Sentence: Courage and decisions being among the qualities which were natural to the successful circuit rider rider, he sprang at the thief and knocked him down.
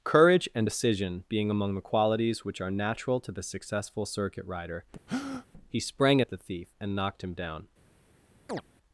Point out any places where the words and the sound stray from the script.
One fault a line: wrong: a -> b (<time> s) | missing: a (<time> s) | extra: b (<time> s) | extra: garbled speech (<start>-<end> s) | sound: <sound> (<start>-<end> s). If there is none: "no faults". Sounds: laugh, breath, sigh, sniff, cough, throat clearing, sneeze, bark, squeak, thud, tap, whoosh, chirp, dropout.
wrong: decisions -> decision (0.6 s)
wrong: were -> are (2.6 s)
missing: rider (4.8 s)
sound: breath (5.1-5.5 s)
sound: chirp (8.5-8.6 s)